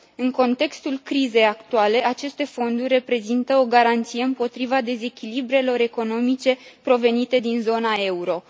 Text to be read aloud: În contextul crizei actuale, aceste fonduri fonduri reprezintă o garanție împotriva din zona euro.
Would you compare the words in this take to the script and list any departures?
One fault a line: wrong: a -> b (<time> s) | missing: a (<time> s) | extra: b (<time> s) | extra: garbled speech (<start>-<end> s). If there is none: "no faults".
missing: fonduri (2.9 s)
extra: dezechilibrelor economice provenite (4.8 s)